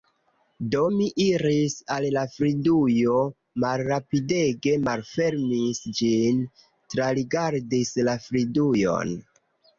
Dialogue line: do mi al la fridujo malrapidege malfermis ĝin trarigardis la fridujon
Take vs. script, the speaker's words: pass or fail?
fail